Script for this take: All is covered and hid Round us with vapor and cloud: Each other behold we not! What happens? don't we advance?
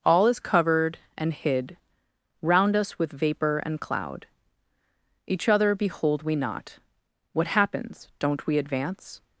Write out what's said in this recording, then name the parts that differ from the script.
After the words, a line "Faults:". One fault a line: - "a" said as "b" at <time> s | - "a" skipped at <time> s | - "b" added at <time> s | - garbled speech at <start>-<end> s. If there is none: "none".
All is covered and hid Round us with vapor and cloud: Each other behold we not! What happens? don't we advance?
Faults:
none